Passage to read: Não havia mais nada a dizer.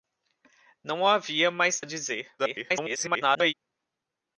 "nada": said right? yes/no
no